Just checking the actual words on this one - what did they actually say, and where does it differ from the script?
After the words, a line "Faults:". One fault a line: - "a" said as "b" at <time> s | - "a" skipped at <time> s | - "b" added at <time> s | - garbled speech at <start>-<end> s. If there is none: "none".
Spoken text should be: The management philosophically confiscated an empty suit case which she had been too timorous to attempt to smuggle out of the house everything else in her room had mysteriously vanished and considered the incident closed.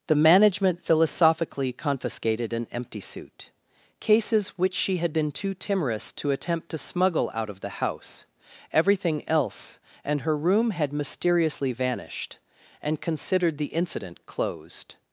The management philosophically confiscated an empty suit cases which she had been too timorous to attempt to smuggle out of the house everything else and her room had mysteriously vanished and considered the incident closed.
Faults:
- "case" said as "cases" at 4.0 s
- "in" said as "and" at 10.0 s